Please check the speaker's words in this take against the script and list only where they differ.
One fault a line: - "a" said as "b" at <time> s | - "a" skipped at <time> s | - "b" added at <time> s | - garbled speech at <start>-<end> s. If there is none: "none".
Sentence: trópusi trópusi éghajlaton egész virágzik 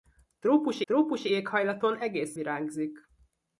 none